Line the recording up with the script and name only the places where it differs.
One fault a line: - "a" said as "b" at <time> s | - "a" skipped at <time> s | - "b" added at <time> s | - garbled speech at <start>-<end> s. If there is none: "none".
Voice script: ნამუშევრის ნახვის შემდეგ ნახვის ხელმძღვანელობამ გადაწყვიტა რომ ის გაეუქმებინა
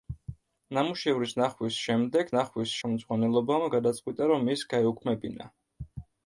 none